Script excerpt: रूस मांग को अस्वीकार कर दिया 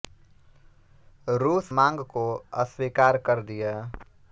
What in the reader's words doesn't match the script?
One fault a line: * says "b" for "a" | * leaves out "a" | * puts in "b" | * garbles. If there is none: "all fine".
all fine